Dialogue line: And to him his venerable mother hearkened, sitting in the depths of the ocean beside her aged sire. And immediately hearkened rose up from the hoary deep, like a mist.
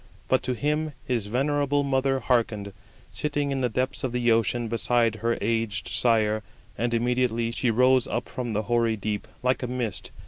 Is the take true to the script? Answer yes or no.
no